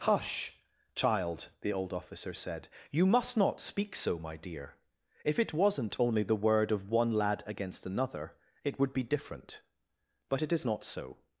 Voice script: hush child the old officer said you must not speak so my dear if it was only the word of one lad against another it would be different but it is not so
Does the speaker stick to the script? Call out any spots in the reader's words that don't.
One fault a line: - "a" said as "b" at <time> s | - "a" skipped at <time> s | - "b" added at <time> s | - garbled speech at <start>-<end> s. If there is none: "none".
- "was" said as "wasn't" at 5.5 s